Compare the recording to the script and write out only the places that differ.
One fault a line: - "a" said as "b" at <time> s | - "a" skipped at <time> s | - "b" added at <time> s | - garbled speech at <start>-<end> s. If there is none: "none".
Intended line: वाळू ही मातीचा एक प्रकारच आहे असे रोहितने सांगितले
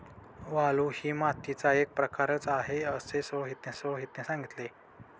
- "रोहितने" added at 3.7 s